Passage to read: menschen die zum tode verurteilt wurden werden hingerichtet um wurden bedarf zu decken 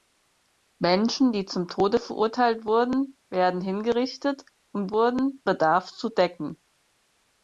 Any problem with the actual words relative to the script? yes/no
no